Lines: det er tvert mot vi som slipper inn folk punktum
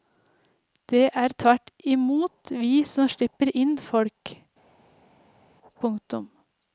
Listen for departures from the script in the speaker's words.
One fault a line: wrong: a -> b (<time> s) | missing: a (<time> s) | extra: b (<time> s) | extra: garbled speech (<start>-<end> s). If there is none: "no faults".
extra: i (1.8 s)